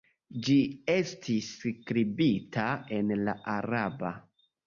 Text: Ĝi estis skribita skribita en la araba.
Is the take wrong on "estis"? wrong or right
right